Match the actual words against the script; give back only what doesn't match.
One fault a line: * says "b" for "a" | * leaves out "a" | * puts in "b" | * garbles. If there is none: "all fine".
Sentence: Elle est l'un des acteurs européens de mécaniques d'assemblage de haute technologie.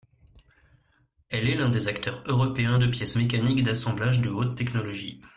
* puts in "pièces"